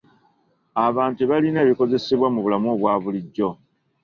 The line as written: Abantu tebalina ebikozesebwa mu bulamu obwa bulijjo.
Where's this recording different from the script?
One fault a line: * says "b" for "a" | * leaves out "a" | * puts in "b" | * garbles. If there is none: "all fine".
all fine